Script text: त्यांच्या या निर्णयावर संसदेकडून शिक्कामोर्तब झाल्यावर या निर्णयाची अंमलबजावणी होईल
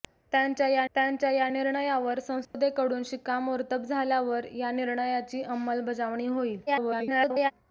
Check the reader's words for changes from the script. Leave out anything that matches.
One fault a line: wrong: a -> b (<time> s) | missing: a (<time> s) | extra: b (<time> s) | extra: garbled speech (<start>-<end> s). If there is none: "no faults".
extra: त्यांच्या या (0.9 s)
extra: garbled speech (6.7-7.5 s)